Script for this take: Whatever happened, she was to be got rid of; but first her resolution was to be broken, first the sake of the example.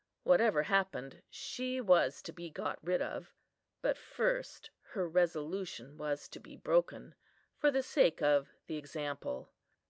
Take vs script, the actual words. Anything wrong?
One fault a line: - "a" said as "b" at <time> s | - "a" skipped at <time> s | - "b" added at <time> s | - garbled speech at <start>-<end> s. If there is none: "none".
- "first" said as "for" at 7.5 s